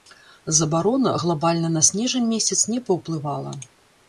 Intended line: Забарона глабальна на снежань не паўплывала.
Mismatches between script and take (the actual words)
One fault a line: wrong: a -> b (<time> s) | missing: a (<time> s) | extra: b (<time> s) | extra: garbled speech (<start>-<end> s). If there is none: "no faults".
extra: месяц (2.3 s)